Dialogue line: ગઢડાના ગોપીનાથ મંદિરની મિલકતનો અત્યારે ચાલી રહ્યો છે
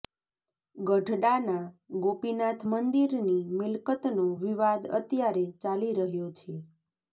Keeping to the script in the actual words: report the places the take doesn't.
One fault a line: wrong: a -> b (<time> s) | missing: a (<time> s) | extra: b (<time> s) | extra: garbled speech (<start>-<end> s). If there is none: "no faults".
extra: વિવાદ (4.4 s)